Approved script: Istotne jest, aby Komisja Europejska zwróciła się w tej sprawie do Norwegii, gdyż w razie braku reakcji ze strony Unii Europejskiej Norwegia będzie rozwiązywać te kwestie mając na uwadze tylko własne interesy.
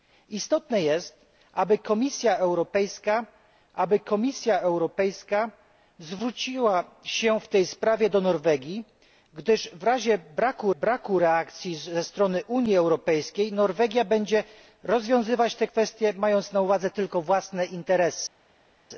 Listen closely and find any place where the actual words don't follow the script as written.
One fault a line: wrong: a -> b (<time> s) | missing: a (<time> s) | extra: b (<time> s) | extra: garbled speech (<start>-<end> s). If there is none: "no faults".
extra: aby Komisja Europejska (3.7 s)
extra: braku (10.8 s)